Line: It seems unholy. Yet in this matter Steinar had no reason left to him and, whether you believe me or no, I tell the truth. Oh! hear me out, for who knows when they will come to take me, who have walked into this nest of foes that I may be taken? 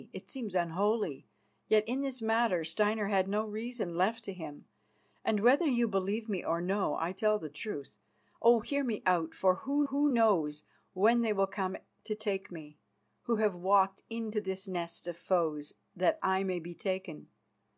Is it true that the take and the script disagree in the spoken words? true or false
true